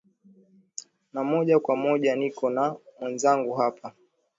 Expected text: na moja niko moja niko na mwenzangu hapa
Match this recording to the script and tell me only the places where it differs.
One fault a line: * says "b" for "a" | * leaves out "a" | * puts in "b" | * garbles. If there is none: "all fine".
* says "kwa" for "niko"